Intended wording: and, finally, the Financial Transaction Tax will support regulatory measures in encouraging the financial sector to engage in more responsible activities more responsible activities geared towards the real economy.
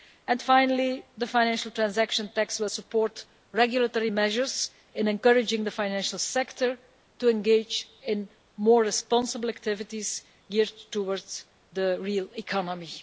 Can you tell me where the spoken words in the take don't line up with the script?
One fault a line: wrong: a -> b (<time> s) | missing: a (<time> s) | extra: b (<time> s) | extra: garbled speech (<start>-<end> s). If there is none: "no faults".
missing: more responsible activities (10.2 s)